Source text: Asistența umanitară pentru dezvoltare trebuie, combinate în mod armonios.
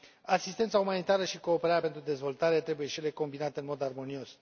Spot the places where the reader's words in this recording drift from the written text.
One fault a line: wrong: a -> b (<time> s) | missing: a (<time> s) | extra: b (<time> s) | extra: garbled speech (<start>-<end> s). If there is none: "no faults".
extra: și cooperarea (1.2 s)
extra: și ele (2.9 s)